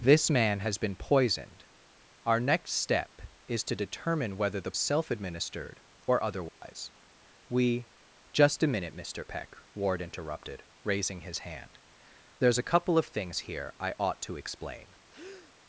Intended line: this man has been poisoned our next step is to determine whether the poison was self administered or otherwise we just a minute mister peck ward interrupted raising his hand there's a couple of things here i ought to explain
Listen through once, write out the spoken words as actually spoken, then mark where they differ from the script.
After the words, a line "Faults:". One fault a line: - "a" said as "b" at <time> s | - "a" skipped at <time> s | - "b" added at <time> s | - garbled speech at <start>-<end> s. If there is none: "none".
this man has been poisoned our next step is to determine whether the self administered or otherwise we just a minute mister peck ward interrupted raising his hand there's a couple of things here i ought to explain
Faults:
- "poison was" skipped at 4.7 s